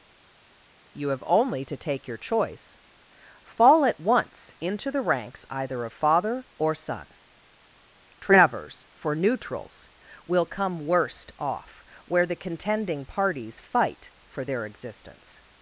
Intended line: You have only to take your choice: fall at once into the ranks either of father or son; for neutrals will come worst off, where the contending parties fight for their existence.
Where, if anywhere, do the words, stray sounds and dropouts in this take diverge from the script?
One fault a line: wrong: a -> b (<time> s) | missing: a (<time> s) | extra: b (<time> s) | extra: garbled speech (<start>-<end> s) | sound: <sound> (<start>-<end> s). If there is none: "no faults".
extra: travers (8.2 s)